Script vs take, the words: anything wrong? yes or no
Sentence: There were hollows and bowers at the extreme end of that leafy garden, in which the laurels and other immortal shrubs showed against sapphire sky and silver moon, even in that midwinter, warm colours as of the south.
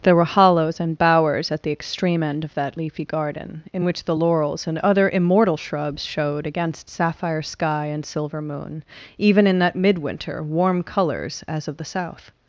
no